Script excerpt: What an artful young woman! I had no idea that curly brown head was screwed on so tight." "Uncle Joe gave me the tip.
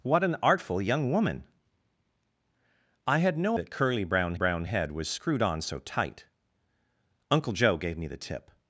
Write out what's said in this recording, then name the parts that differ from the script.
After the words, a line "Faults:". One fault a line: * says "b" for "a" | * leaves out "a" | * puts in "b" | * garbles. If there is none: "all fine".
What an artful young woman! I had no that curly brown brown head was screwed on so tight." "Uncle Joe gave me the tip.
Faults:
* leaves out "idea"
* puts in "brown"